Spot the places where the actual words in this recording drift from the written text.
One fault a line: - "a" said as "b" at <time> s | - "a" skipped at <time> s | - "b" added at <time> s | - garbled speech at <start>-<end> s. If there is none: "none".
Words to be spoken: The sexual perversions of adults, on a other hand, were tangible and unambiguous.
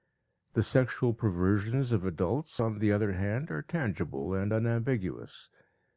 - "a" said as "the" at 2.8 s
- "were" said as "are" at 3.5 s